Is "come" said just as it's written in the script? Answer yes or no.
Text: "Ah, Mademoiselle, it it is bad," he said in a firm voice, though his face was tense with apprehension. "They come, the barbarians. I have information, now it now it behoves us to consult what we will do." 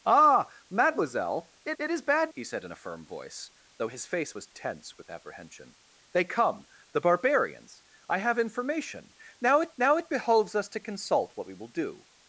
yes